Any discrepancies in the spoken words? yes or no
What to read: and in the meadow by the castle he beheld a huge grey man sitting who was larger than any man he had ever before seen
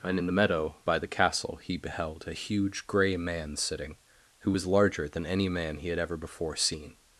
no